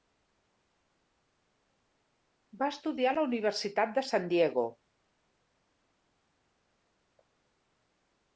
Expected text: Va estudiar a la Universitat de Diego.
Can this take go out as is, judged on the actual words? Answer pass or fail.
fail